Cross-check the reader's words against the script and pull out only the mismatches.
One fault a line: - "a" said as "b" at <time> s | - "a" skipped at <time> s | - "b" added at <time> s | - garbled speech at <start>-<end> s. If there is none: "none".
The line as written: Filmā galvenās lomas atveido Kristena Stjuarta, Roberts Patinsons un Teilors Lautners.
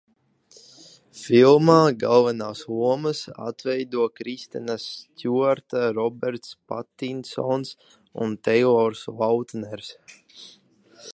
none